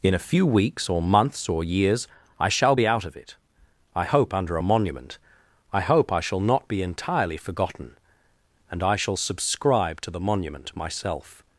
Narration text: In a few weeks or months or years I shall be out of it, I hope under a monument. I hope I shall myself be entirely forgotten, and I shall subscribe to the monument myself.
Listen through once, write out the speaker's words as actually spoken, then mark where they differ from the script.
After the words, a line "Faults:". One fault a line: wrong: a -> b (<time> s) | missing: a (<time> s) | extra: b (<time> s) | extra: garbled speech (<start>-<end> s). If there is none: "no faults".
In a few weeks or months or years I shall be out of it, I hope under a monument. I hope I shall not be entirely forgotten, and I shall subscribe to the monument myself.
Faults:
wrong: myself -> not (6.4 s)